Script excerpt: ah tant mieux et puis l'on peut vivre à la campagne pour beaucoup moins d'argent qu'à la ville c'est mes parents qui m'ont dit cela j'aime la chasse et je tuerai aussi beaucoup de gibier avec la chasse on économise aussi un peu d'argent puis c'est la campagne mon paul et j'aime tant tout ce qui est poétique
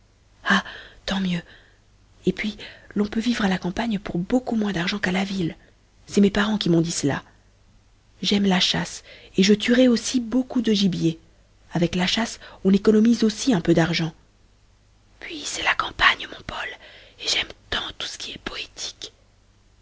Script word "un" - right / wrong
right